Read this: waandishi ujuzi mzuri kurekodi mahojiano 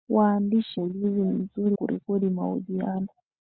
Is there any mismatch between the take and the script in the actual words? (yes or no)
no